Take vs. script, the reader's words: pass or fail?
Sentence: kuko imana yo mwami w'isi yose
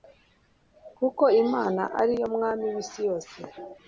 fail